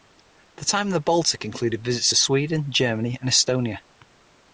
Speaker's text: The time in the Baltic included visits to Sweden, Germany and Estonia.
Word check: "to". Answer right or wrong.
right